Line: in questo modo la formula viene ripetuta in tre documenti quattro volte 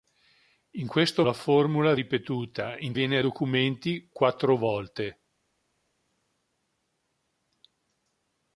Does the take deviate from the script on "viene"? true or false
true